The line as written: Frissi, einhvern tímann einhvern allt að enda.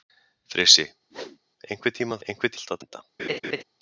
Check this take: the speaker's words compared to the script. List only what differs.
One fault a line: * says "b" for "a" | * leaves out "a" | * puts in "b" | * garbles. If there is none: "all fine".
all fine